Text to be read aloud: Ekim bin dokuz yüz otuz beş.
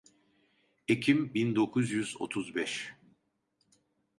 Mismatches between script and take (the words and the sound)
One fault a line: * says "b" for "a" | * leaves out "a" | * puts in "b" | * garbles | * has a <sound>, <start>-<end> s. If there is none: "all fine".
all fine